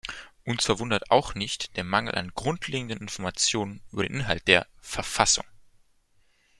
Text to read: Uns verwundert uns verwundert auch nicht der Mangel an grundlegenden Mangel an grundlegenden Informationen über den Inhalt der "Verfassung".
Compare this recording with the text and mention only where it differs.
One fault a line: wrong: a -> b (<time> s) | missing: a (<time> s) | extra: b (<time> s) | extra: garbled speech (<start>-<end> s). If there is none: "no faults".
missing: uns verwundert (1.1 s)
missing: Mangel an grundlegenden (3.0 s)